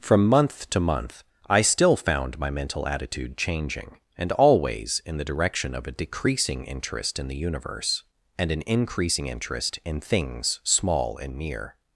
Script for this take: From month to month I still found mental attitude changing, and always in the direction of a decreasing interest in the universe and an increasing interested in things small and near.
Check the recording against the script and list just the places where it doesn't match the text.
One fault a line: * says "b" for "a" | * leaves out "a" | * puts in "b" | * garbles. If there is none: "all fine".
* puts in "my"
* says "interest" for "interested"